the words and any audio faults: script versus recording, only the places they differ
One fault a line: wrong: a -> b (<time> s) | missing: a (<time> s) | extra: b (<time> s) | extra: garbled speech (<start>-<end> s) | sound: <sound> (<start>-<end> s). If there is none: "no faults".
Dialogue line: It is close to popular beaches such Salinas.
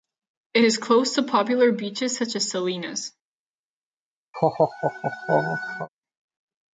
extra: as (2.4 s)
sound: laugh (4.3-5.9 s)